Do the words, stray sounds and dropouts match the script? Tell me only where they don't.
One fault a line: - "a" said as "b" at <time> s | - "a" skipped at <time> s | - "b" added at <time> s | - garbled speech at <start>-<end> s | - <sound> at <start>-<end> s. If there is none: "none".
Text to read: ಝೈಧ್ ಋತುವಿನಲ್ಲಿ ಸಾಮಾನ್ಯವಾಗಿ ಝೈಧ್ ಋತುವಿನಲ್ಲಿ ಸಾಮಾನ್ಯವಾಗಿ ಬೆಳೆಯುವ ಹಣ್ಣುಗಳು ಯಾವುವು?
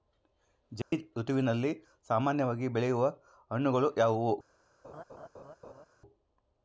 - dropout at 0.8-0.9 s
- "ಝೈಧ್ ಋತುವಿನಲ್ಲಿ ಸಾಮಾನ್ಯವಾಗಿ" skipped at 2.7 s
- laugh at 4.8-5.9 s